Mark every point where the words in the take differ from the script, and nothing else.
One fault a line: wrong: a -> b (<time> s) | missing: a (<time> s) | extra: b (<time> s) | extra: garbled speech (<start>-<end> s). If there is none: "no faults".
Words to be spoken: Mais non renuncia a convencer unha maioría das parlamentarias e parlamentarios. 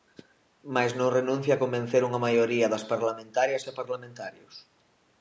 no faults